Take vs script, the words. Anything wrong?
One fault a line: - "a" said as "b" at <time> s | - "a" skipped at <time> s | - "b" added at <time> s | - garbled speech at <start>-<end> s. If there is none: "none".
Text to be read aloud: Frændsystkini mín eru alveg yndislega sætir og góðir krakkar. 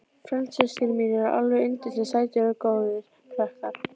none